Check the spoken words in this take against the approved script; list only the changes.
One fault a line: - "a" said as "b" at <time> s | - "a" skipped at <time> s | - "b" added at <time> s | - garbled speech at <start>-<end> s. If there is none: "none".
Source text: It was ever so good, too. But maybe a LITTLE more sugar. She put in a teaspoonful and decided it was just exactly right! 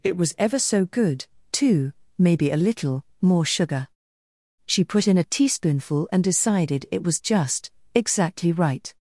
- "But" skipped at 1.9 s